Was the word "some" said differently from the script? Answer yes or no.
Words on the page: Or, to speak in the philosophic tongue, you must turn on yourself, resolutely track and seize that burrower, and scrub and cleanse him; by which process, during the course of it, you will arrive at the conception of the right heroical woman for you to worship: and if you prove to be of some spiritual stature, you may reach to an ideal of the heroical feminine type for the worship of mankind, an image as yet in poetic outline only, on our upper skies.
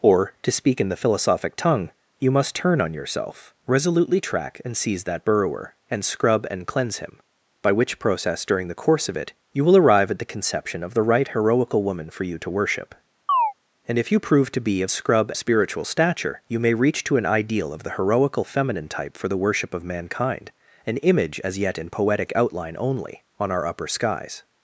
yes